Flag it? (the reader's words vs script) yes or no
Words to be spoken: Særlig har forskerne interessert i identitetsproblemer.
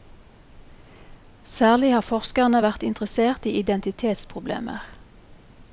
yes